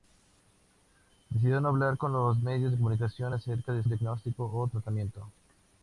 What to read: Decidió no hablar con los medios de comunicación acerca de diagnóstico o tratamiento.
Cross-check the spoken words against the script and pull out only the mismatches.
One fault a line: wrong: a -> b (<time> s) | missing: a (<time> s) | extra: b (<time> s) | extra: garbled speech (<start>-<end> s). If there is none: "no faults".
no faults